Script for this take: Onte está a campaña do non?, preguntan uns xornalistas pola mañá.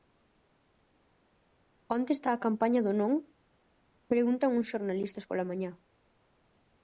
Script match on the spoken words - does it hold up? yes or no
yes